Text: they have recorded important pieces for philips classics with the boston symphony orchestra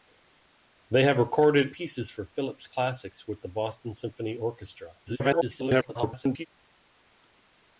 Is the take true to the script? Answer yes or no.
no